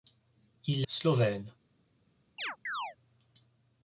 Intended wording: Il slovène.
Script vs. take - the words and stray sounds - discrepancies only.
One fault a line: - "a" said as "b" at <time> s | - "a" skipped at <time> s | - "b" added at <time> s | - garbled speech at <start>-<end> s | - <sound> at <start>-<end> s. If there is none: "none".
- chirp at 2.4-3.0 s